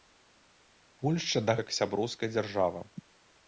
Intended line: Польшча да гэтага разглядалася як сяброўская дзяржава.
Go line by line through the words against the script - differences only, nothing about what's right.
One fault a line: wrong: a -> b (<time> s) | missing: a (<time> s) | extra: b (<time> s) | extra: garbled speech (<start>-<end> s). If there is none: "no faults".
missing: гэтага разглядалася (1.5 s)